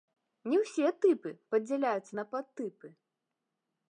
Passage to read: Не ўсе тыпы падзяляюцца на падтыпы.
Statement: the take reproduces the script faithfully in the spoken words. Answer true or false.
true